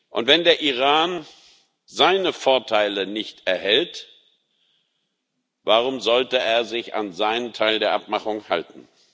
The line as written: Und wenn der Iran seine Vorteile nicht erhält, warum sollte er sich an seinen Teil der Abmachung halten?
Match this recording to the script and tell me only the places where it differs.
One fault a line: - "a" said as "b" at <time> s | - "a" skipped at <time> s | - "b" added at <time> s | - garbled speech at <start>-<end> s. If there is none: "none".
none